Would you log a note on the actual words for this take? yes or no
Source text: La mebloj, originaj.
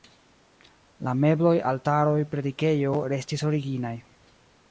yes